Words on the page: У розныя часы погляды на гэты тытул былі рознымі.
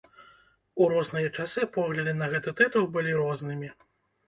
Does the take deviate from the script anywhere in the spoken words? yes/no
no